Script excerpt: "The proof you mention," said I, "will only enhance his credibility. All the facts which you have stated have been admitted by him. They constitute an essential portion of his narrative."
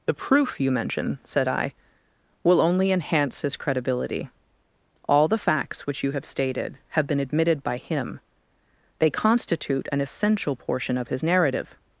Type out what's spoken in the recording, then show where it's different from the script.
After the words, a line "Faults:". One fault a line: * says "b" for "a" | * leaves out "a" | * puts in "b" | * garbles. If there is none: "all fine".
"The proof you mention," said I, "will only enhance his credibility. All the facts which you have stated have been admitted by him. They constitute an essential portion of his narrative."
Faults:
all fine